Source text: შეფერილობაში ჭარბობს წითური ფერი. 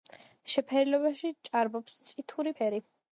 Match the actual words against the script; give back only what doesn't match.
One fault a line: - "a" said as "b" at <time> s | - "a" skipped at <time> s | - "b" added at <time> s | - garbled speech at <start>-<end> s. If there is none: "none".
none